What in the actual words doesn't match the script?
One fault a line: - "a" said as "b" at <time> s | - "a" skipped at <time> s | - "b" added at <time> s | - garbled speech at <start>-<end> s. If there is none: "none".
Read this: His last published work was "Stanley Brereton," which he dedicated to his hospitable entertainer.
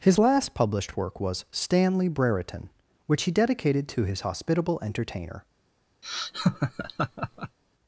none